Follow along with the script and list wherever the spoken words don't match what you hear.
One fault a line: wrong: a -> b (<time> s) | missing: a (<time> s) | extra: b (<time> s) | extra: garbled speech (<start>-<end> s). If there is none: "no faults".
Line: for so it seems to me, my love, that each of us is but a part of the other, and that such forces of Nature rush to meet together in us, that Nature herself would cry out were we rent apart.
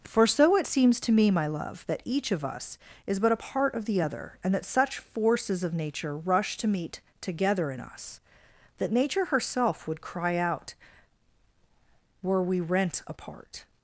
no faults